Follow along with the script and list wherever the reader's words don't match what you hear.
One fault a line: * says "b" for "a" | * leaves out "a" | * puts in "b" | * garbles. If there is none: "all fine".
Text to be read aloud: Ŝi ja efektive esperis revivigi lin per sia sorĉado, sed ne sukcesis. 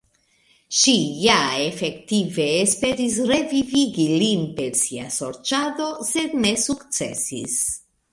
all fine